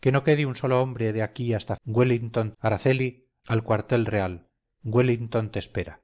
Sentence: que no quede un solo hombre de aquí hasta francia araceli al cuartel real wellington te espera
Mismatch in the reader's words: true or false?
true